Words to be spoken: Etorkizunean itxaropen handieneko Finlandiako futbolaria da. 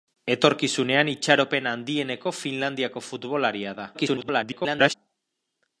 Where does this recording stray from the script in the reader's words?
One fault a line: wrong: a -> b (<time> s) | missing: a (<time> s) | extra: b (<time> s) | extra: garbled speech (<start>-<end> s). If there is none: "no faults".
extra: garbled speech (3.9-4.9 s)